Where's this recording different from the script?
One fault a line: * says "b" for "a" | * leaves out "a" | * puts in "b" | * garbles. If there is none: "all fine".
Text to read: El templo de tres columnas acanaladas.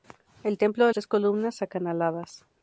all fine